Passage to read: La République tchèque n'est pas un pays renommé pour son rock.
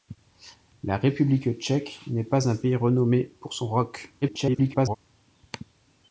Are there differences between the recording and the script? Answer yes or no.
yes